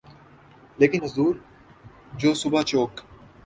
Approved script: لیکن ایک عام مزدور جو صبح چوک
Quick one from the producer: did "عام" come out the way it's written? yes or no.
no